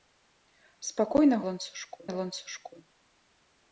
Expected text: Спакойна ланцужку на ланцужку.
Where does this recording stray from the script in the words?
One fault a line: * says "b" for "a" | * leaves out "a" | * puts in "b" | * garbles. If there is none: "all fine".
all fine